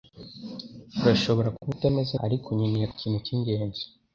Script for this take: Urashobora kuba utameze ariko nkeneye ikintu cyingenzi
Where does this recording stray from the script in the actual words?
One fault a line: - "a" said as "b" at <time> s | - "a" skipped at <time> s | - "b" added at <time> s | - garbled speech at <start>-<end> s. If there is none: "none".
none